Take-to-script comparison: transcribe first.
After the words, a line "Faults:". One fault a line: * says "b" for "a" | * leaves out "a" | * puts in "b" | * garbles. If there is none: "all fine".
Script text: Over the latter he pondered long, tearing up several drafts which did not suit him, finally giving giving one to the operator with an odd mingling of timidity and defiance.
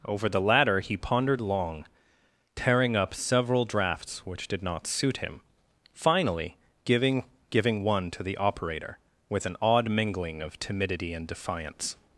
Over the latter he pondered long, tearing up several drafts which did not suit him, finally giving giving one to the operator with an odd mingling of timidity and defiance.
Faults:
all fine